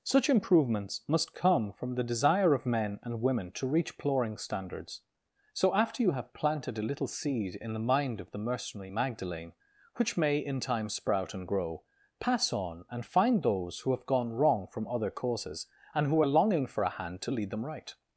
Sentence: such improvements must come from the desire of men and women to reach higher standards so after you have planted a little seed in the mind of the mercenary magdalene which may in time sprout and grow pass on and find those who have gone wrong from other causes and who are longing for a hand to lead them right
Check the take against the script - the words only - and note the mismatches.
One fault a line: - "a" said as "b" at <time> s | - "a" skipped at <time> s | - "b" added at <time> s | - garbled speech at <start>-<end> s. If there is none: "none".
- "higher" said as "ploring" at 4.0 s